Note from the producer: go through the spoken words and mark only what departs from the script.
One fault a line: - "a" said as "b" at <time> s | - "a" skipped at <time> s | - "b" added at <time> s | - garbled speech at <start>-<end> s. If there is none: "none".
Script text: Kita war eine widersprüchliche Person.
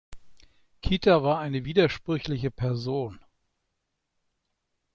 none